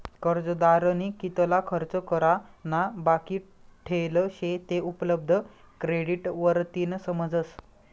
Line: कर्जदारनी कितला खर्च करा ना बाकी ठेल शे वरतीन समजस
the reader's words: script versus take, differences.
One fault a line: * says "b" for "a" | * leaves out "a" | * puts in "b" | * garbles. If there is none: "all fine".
* puts in "ते उपलब्ध क्रेडिट"